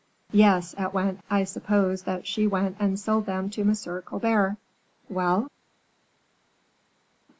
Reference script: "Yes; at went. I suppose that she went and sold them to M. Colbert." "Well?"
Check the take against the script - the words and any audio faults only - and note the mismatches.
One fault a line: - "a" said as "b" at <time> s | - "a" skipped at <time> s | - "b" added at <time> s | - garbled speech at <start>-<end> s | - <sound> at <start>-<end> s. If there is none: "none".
none